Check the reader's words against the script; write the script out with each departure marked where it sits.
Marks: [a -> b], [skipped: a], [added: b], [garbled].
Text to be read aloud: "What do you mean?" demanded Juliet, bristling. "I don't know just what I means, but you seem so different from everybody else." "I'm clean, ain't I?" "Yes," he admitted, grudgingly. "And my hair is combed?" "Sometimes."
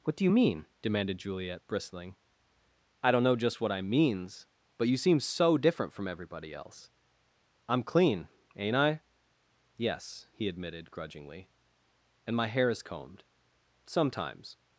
"What do you mean?" demanded Juliet, bristling. "I don't know just what I means, but you seem so different from everybody else." "I'm clean, ain't I?" "Yes," he admitted, grudgingly. "And my hair is combed?" "Sometimes."